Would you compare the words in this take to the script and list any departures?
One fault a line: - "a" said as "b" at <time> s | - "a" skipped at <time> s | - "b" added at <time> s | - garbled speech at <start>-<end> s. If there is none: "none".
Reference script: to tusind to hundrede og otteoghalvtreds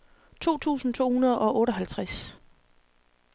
none